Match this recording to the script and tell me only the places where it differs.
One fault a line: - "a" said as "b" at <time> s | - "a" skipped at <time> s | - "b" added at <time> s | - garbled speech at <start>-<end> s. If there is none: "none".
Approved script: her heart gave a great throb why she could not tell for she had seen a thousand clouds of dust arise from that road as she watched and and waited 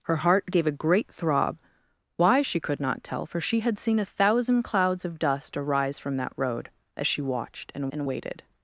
none